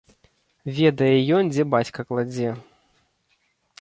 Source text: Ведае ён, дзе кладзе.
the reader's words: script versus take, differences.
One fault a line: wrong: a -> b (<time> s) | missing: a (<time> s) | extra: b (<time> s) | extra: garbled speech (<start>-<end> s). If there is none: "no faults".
extra: бацька (1.8 s)